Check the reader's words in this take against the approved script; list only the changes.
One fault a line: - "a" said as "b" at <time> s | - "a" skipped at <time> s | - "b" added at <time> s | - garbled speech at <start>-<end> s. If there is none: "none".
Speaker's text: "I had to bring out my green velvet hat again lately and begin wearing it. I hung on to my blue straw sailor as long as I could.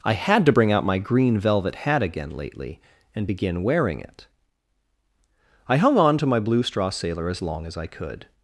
none